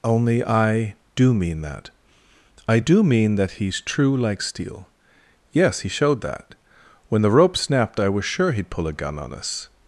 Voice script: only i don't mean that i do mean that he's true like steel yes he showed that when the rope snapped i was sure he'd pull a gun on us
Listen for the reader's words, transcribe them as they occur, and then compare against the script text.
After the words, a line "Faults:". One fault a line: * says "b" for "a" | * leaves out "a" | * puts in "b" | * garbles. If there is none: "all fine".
only i do mean that i do mean that he's true like steel yes he showed that when the rope snapped i was sure he'd pull a gun on us
Faults:
* says "do" for "don't"